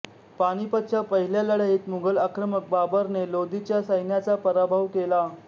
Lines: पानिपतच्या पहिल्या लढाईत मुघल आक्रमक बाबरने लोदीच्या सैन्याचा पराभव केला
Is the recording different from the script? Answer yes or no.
no